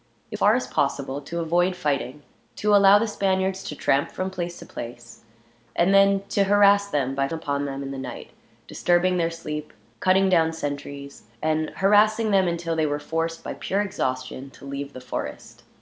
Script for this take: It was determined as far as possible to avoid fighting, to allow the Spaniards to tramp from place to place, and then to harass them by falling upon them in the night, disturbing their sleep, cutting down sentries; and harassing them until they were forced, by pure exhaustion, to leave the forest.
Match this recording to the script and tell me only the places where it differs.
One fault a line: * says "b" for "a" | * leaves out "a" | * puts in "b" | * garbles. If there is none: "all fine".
* leaves out "was determined as"
* leaves out "falling"